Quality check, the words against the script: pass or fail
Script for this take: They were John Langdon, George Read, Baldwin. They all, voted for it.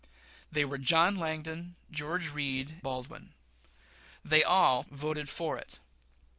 pass